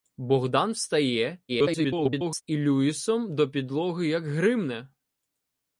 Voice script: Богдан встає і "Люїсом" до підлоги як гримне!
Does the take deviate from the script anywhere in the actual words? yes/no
yes